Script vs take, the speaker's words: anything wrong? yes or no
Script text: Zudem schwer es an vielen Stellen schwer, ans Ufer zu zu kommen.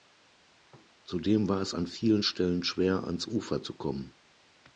yes